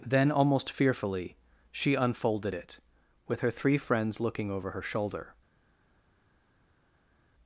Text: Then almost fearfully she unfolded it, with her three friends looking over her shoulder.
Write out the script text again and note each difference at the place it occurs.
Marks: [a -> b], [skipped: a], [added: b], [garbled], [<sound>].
Then almost fearfully she unfolded it, with her three friends looking over her shoulder.